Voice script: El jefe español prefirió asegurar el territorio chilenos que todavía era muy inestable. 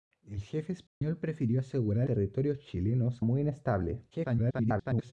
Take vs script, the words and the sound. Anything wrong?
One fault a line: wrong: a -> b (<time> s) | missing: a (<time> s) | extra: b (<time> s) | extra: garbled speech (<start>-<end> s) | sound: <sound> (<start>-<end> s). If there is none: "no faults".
sound: dropout (0.9-1.0 s)
missing: el (2.1 s)
missing: que todavía era (3.2 s)
extra: garbled speech (4.1-5.1 s)